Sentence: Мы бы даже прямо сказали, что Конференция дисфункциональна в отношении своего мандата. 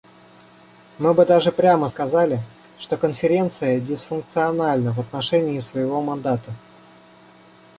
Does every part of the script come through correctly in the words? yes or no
yes